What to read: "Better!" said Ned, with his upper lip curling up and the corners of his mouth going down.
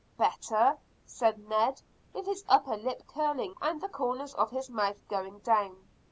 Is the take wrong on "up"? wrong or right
wrong